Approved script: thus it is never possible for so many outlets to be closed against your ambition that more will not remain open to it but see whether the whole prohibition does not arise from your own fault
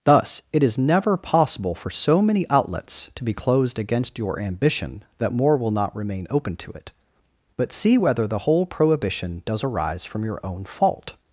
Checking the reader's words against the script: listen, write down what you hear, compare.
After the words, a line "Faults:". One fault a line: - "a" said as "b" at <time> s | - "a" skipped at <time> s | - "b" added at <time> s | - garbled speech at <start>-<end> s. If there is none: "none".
thus it is never possible for so many outlets to be closed against your ambition that more will not remain open to it but see whether the whole prohibition does arise from your own fault
Faults:
- "not" skipped at 9.6 s